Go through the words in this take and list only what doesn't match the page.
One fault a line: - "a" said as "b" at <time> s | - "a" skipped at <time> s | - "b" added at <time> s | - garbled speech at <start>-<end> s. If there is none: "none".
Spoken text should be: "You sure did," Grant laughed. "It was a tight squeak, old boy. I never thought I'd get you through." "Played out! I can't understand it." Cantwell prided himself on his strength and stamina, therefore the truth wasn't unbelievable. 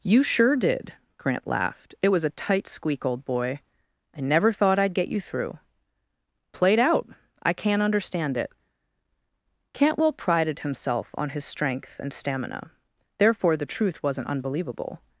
none